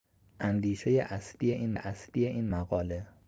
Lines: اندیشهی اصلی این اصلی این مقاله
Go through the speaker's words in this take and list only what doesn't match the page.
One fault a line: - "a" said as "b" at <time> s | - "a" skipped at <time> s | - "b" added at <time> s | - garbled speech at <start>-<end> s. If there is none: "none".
none